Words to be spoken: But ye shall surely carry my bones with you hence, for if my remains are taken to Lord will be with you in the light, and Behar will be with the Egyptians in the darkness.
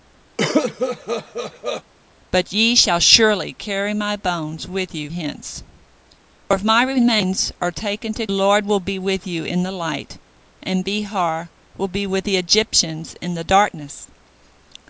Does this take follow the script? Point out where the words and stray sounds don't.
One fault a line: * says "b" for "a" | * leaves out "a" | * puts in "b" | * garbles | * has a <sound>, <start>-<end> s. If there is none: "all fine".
* has a cough, 0.4-1.8 s